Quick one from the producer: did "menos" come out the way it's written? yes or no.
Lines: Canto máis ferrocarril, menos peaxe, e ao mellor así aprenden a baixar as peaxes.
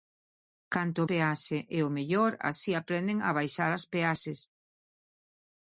no